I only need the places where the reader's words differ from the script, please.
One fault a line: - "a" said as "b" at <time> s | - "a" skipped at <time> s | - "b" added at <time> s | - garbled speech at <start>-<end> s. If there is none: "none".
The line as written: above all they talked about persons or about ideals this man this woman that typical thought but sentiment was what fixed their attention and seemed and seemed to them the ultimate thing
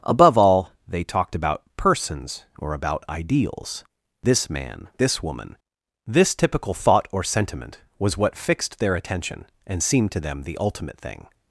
- "that" said as "this" at 6.1 s
- "but" said as "or" at 7.1 s
- "and seemed" skipped at 10.1 s